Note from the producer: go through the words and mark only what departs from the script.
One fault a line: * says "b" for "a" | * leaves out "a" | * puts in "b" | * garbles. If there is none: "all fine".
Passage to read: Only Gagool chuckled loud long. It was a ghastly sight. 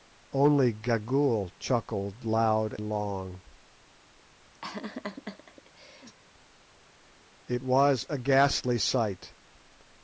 all fine